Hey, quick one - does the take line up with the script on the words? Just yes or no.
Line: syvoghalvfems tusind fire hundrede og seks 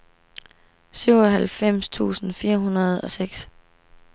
yes